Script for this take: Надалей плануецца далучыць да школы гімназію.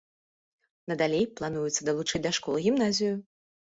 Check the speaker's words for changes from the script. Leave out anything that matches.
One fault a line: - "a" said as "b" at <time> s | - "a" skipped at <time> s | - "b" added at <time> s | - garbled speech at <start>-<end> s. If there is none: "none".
none